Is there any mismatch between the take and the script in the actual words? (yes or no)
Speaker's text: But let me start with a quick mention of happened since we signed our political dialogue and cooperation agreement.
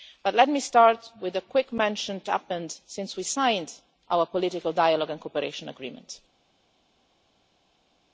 no